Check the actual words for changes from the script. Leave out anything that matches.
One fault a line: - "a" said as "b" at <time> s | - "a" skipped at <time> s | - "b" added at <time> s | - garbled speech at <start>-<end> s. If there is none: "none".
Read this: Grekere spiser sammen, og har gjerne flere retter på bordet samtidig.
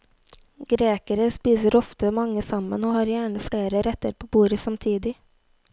- "ofte mange" added at 1.8 s